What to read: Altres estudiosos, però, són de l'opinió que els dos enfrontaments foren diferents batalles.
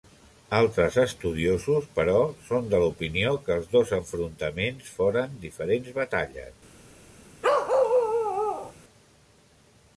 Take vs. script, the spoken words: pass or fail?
pass